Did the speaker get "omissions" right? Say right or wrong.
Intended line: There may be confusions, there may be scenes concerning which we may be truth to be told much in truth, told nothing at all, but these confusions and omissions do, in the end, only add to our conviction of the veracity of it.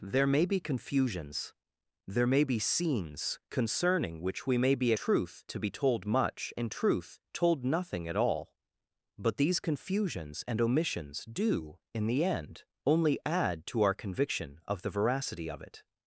right